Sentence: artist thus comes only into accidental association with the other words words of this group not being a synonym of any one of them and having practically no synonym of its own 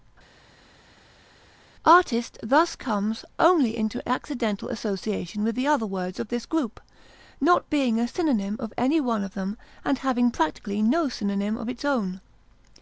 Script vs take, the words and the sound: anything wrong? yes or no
yes